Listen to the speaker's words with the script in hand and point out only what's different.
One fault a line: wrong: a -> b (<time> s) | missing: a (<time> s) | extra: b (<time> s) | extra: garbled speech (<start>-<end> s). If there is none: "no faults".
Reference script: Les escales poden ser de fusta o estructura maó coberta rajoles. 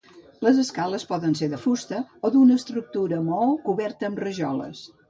extra: d'una (2.4 s)
extra: amb (4.1 s)